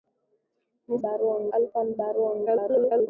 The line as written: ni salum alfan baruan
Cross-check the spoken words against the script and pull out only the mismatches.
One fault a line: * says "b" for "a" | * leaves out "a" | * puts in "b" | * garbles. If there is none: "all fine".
* says "baruan" for "salum"
* garbles